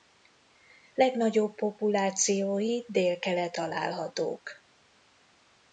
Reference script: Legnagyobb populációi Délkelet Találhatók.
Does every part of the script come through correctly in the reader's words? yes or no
yes